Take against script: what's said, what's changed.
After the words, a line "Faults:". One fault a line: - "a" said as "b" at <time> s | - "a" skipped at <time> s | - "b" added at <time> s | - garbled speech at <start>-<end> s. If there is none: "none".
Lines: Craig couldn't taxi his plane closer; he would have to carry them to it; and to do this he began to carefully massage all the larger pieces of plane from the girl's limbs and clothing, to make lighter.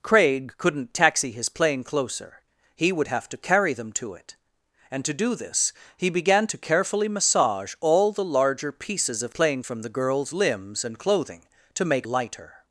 Craig couldn't taxi his plane closer; he would have to carry them to it; and to do this he began to carefully massage all the larger pieces of plane from the girl's limbs and clothing, to make lighter.
Faults:
none